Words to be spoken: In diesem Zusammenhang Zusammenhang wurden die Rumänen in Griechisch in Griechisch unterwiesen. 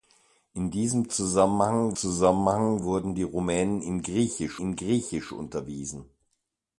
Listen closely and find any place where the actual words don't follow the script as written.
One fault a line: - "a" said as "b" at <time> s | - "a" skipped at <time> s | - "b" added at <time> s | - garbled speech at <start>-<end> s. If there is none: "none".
none